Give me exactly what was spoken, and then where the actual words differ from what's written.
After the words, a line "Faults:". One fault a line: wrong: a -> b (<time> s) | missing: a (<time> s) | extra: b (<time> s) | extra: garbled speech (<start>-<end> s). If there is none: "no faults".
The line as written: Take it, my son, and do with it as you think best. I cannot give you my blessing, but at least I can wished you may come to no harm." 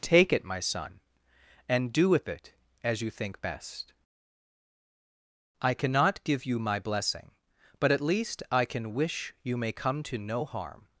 Take it, my son, and do with it as you think best. I cannot give you my blessing, but at least I can wish you may come to no harm."
Faults:
wrong: wished -> wish (8.9 s)